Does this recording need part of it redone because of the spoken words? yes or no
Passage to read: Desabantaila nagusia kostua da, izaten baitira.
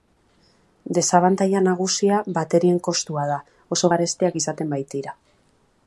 yes